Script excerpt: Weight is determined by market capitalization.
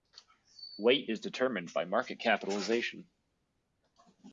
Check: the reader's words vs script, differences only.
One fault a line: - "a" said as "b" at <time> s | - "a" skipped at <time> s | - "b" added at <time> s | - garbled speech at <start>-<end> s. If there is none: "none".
none